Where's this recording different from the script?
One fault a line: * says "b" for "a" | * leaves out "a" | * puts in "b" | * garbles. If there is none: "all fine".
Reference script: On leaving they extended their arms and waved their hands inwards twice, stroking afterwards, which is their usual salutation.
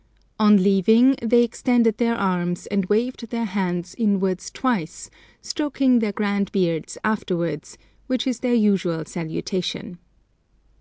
* puts in "their grand beards"